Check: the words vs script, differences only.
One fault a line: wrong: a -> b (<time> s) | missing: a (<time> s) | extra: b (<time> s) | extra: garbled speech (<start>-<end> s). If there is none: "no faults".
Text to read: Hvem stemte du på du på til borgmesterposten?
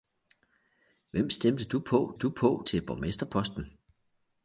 no faults